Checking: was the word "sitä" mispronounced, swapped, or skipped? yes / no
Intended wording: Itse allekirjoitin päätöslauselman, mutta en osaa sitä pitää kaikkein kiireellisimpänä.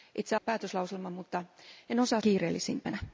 yes